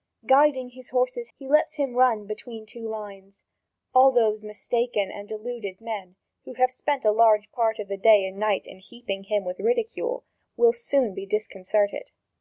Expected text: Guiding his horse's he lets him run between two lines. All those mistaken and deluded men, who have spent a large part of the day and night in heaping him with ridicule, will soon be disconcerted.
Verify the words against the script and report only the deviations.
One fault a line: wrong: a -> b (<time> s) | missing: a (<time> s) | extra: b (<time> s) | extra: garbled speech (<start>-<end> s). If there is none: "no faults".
no faults